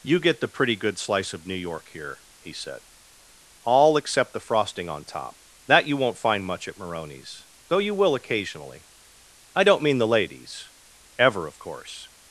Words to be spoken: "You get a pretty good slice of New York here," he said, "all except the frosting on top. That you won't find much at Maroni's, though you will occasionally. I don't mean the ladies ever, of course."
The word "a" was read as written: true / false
false